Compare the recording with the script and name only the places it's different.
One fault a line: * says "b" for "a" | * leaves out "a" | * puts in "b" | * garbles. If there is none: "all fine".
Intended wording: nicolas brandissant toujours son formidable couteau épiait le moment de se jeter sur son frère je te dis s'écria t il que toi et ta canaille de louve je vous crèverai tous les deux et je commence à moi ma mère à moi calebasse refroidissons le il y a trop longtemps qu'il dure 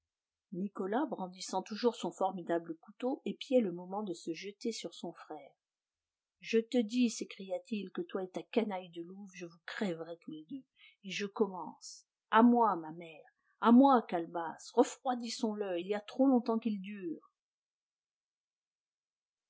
all fine